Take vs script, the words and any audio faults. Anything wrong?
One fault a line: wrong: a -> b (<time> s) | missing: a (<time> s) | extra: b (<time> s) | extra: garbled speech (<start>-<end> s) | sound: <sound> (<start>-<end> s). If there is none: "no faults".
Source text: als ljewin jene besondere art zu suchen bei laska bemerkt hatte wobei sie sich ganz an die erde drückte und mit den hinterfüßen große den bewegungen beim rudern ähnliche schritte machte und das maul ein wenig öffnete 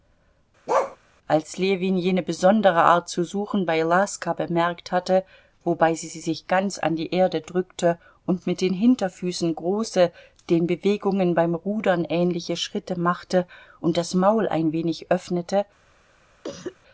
sound: bark (0.7-1.0 s)
extra: sie (6.1 s)
sound: cough (16.4-16.8 s)